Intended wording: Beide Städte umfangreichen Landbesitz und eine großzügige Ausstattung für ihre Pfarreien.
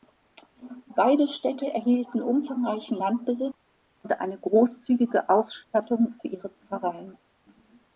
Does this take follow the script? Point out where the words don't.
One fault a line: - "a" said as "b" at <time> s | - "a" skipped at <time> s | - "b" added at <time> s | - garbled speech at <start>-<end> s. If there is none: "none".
- "erhielten" added at 1.7 s